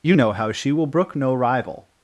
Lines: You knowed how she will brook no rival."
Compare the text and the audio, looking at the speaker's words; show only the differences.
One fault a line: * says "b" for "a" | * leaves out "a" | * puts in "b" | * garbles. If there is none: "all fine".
* says "know" for "knowed"